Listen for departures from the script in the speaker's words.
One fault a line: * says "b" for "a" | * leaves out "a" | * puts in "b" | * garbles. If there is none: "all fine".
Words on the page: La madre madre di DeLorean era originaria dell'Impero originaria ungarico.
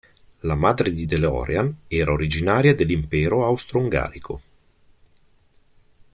* leaves out "madre"
* says "austro" for "originaria"